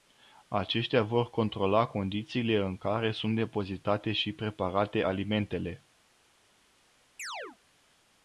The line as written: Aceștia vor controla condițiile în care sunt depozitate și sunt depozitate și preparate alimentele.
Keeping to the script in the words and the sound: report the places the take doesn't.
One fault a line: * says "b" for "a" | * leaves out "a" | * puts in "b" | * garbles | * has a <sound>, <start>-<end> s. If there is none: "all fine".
* leaves out "sunt depozitate și"
* has a chirp, 7.2-7.6 s